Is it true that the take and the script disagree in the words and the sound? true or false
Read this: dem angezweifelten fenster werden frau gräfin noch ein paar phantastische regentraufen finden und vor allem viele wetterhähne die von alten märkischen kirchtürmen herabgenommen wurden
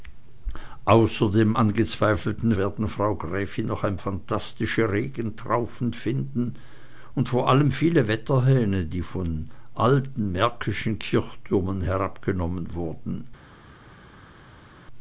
true